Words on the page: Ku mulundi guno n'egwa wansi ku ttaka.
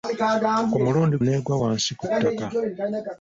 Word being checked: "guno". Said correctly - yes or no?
no